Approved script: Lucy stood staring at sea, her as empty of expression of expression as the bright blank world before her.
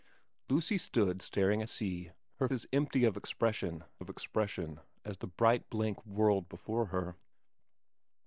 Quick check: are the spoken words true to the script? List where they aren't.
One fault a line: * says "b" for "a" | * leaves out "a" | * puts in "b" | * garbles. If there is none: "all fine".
all fine